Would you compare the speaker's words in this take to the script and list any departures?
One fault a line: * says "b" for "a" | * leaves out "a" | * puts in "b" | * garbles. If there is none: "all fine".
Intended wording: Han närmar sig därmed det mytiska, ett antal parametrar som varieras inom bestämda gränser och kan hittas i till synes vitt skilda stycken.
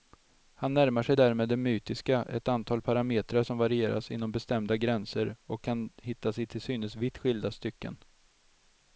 all fine